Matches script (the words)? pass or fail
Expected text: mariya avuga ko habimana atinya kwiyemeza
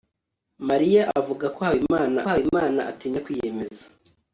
fail